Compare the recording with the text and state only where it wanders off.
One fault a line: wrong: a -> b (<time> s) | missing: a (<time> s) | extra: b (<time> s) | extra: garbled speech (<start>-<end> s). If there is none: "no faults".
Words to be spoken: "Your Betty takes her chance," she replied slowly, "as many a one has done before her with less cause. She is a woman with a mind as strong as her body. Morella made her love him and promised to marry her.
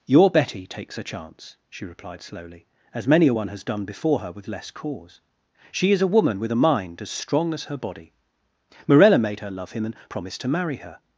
no faults